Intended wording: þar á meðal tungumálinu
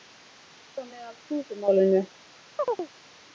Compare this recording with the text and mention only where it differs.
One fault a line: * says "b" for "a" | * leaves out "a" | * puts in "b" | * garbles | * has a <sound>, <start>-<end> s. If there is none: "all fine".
* has a chirp, 2.6-2.9 s